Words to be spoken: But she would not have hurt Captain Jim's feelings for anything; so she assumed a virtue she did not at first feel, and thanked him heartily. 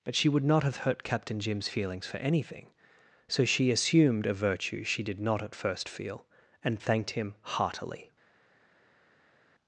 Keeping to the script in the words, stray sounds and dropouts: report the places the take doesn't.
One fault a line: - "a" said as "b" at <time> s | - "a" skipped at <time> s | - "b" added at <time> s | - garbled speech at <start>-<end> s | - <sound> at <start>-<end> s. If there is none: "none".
none